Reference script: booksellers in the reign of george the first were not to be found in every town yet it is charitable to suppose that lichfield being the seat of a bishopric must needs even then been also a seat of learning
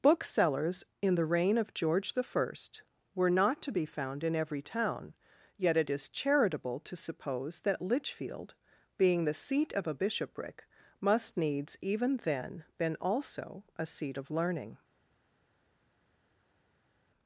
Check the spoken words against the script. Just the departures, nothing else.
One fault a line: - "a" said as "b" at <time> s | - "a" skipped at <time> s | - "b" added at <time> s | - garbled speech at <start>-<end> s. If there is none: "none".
none